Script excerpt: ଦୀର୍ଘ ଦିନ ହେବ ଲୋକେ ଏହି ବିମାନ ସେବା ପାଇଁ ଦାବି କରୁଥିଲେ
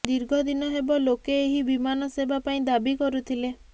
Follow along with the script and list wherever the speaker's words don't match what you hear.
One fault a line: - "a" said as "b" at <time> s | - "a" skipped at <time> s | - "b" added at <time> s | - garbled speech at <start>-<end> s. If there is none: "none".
none